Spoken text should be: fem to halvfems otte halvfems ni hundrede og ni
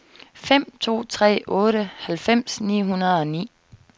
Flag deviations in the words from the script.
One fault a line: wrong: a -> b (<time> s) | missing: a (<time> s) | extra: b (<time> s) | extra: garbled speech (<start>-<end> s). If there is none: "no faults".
wrong: halvfems -> tre (1.0 s)